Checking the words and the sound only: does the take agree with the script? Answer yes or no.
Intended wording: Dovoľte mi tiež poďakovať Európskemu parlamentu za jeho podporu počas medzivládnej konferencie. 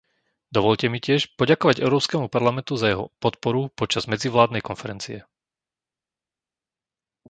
yes